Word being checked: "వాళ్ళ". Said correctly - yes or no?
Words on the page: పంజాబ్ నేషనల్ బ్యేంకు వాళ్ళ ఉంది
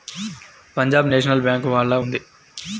yes